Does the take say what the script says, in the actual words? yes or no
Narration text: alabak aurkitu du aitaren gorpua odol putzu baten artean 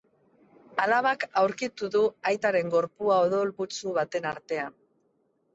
yes